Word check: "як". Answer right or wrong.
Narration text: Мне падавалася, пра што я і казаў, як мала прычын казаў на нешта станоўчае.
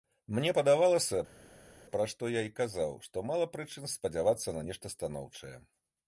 wrong